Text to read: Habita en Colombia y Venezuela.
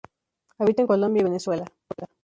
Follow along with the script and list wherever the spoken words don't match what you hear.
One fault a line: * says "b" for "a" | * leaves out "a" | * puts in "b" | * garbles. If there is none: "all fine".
all fine